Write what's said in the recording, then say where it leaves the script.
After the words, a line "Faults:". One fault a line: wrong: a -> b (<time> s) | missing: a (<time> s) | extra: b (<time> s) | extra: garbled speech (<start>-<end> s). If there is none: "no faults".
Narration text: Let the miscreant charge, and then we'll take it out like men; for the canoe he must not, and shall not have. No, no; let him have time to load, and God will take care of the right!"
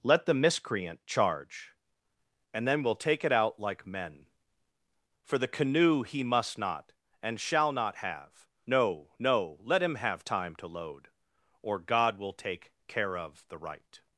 Let the miscreant charge, and then we'll take it out like men; for the canoe he must not, and shall not have. No, no; let him have time to load, or God will take care of the right!"
Faults:
wrong: and -> or (11.6 s)